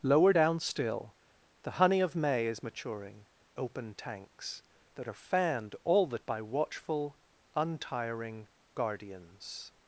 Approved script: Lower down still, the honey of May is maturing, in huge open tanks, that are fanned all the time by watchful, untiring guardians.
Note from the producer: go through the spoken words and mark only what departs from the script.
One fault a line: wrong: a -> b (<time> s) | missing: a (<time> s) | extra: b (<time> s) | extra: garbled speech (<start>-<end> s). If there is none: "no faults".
missing: in huge (3.2 s)
missing: time (6.2 s)